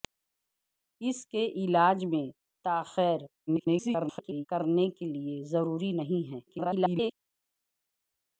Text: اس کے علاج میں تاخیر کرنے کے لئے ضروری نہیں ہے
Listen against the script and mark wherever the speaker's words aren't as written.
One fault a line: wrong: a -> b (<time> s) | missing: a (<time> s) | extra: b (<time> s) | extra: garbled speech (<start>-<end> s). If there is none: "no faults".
extra: garbled speech (3.5-4.5 s)
extra: garbled speech (6.5-7.1 s)